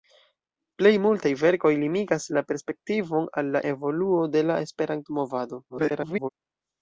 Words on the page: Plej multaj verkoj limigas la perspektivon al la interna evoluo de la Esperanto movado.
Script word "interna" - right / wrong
wrong